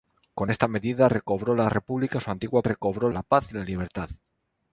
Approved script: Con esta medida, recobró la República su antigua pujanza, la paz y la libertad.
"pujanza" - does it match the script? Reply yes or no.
no